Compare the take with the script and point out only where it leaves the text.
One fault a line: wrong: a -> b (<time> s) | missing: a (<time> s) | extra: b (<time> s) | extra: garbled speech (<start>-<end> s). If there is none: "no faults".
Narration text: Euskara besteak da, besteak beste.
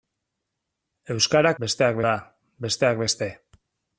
no faults